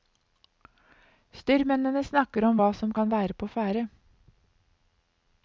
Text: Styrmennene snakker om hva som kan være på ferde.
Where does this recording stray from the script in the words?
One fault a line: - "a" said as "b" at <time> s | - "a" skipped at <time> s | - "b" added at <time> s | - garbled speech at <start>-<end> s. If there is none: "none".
none